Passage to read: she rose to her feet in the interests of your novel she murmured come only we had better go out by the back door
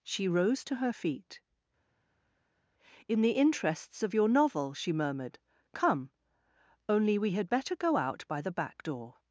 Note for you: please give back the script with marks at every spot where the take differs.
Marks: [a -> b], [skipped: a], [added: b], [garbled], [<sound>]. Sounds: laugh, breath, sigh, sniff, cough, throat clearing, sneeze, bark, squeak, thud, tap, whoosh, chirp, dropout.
she rose to her feet in the interests of your novel she murmured come only we had better go out by the back door